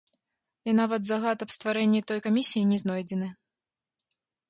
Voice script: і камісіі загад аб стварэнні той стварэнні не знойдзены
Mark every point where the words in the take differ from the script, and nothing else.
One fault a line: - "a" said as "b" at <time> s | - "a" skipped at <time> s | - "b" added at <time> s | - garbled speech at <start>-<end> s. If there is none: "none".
- "камісіі" said as "нават" at 0.8 s
- "стварэнні" said as "камісіі" at 2.3 s